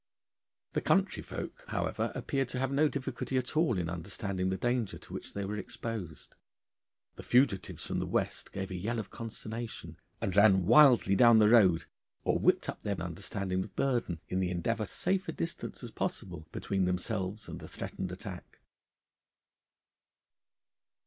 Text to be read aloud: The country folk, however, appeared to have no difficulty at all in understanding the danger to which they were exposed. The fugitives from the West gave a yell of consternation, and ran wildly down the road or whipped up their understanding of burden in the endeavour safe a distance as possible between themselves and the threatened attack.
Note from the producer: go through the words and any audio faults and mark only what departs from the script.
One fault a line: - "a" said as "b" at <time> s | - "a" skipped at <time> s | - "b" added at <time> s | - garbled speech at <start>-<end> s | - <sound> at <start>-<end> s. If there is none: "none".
none